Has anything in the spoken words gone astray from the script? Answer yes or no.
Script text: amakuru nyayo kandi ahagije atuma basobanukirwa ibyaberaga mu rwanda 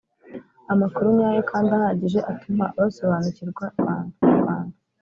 yes